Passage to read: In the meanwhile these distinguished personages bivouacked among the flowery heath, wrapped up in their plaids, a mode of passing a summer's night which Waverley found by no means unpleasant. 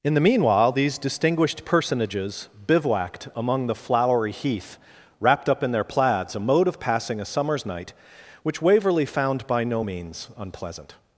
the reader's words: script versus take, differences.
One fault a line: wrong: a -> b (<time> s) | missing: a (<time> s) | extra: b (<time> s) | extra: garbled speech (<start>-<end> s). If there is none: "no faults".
no faults